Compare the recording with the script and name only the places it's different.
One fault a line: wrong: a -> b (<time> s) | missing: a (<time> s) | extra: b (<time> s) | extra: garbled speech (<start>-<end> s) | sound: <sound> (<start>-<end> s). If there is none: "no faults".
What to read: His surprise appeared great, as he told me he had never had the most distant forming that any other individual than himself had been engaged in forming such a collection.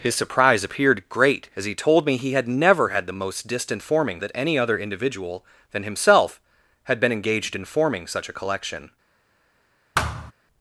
sound: thud (9.9-10.3 s)